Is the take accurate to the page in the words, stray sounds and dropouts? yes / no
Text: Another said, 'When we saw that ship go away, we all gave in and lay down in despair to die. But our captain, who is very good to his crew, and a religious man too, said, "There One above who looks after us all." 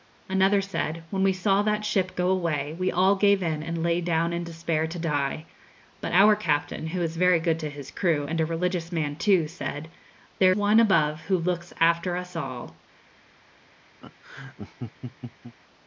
no